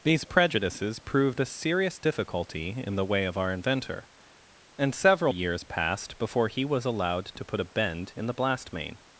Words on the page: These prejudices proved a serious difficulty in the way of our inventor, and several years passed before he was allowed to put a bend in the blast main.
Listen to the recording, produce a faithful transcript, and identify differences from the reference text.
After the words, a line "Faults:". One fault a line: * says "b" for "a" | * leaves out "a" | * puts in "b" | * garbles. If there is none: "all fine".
These prejudices proved a serious difficulty in the way of our inventor, and several years passed before he was allowed to put a bend in the blast main.
Faults:
all fine